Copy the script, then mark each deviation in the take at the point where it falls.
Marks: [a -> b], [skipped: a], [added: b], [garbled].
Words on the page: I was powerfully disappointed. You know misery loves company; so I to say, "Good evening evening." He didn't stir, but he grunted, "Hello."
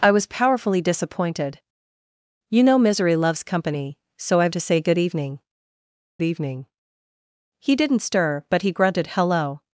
I was powerfully disappointed. You know misery loves company; so I to say, "Good evening evening." He didn't stir, but he grunted, "Hello."